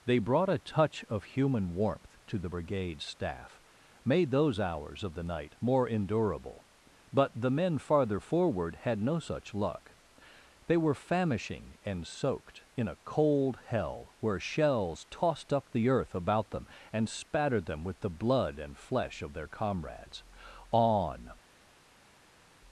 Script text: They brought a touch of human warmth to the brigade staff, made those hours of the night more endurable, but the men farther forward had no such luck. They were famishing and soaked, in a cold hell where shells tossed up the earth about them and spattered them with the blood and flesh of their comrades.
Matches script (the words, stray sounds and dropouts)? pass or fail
fail